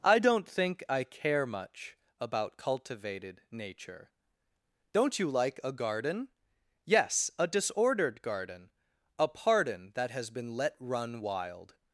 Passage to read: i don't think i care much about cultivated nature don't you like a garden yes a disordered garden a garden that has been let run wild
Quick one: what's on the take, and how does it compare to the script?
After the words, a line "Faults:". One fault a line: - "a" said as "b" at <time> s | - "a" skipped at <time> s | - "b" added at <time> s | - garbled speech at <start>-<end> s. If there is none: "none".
i don't think i care much about cultivated nature don't you like a garden yes a disordered garden a pardon that has been let run wild
Faults:
- "garden" said as "pardon" at 9.3 s